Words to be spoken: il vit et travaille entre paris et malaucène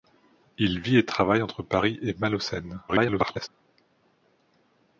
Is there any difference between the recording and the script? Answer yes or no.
yes